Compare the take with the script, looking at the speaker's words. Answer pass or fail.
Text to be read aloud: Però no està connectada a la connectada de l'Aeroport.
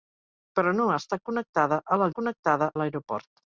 pass